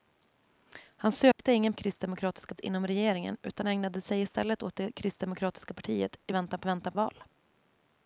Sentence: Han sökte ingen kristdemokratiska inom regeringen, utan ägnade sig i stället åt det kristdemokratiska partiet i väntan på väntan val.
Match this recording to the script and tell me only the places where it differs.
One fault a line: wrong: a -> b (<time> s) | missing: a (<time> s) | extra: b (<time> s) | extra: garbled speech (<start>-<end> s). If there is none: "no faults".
no faults